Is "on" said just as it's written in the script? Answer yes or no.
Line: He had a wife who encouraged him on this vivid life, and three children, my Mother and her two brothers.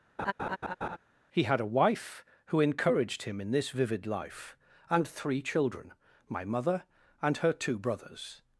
no